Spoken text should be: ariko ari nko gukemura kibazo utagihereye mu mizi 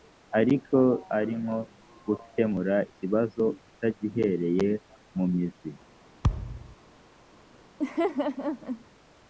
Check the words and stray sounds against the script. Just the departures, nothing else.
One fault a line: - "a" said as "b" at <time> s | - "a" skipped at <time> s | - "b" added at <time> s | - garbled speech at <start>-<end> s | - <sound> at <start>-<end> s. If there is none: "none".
- thud at 6.2-6.8 s
- laugh at 7.8-8.8 s